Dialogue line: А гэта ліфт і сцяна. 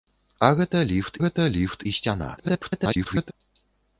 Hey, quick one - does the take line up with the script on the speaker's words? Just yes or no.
no